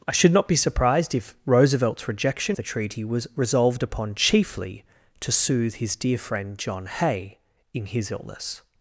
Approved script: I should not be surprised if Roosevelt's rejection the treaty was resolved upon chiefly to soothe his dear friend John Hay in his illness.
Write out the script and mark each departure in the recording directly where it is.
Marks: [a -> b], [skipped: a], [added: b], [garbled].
I should not be surprised if Roosevelt's rejection the treaty was resolved upon chiefly to soothe his dear friend John Hay in his illness.